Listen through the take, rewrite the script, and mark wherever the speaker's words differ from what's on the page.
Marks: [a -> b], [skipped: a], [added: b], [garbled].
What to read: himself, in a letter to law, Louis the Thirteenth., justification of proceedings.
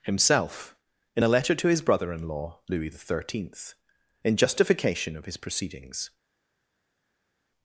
himself, in a letter to [added: his brother in] law, Louis the Thirteenth., [added: in] justification of [added: his] proceedings.